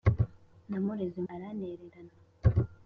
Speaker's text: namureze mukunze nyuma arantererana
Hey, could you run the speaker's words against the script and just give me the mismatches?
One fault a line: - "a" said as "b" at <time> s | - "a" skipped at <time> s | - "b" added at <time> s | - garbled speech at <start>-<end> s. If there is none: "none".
- "mukunze nyuma" skipped at 1.2 s